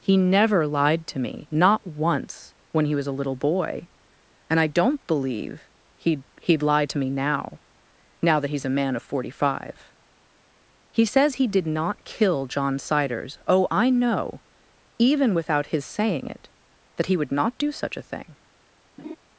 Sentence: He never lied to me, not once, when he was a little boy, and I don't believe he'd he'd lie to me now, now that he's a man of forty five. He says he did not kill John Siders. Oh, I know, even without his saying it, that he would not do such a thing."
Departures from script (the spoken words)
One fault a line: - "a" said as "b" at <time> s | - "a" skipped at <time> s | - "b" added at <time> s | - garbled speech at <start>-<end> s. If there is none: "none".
none